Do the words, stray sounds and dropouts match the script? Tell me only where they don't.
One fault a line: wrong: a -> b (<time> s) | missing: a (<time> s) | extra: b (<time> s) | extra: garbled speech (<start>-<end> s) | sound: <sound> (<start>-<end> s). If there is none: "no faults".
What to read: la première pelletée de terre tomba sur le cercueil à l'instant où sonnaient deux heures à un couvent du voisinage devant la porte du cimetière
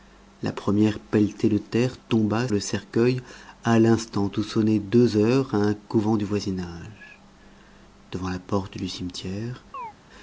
missing: sur (2.5 s)
sound: chirp (9.7-9.9 s)